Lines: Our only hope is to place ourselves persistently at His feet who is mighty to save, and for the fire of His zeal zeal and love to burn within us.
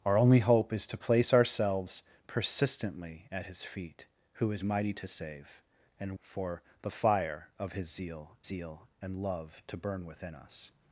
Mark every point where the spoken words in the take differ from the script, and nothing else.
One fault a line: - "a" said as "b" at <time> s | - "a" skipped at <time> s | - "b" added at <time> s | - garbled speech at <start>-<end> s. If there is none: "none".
none